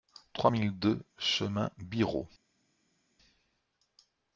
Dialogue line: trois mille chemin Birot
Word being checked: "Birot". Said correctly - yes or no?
yes